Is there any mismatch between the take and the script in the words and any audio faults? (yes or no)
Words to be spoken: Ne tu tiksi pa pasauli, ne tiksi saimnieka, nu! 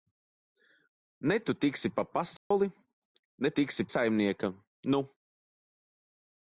yes